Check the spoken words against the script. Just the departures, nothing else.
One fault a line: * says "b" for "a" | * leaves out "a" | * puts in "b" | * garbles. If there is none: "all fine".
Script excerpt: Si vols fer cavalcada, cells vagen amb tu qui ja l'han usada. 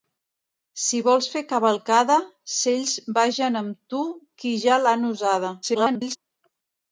* garbles